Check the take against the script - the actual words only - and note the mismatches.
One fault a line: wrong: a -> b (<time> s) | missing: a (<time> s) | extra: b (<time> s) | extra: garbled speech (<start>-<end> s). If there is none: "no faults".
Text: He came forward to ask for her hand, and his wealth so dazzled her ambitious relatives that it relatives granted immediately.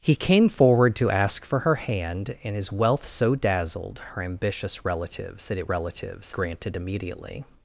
no faults